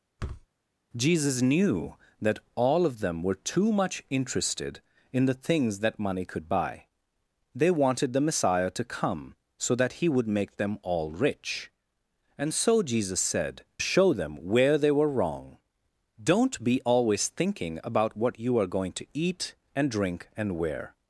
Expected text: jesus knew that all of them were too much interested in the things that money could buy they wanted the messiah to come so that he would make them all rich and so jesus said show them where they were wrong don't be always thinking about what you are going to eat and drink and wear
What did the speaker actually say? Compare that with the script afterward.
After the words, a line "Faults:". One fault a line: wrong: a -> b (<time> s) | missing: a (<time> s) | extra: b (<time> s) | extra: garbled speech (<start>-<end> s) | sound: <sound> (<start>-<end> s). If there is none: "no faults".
jesus knew that all of them were too much interested in the things that money could buy they wanted the messiah to come so that he would make them all rich and so jesus said show them where they were wrong don't be always thinking about what you are going to eat and drink and wear
Faults:
sound: thud (0.2-0.5 s)